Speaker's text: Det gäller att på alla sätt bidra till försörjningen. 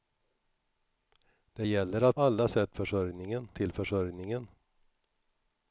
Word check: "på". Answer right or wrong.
wrong